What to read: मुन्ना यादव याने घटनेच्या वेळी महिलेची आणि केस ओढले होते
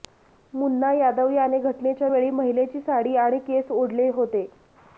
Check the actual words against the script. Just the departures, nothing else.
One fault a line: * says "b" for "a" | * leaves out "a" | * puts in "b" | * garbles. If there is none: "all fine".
* puts in "साडी"